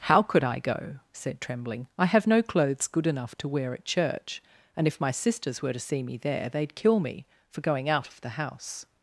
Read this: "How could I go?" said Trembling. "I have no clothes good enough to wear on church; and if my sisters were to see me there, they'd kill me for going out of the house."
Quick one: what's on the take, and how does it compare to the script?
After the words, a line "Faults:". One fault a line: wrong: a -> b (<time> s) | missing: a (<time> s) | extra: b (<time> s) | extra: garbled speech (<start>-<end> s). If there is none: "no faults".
"How could I go?" said Trembling. "I have no clothes good enough to wear at church; and if my sisters were to see me there, they'd kill me for going out of the house."
Faults:
wrong: on -> at (3.7 s)